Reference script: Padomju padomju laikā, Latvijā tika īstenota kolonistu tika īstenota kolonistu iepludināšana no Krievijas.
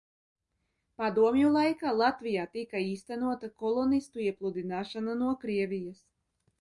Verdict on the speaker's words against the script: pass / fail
fail